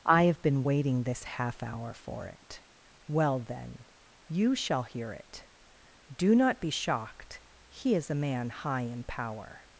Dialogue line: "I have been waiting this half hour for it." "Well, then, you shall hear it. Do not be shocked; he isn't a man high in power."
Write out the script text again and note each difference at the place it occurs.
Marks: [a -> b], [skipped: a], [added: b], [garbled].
"I have been waiting this half hour for it." "Well, then, you shall hear it. Do not be shocked; he [isn't -> is] a man high in power."